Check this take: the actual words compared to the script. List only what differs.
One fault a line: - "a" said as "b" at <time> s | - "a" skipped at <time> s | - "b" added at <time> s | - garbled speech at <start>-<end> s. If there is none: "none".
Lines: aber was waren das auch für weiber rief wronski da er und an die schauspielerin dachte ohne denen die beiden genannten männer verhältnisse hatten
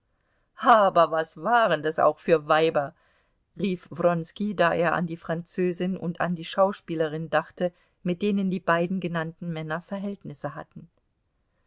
- "an die französin" added at 4.9 s
- "ohne" said as "mit" at 8.0 s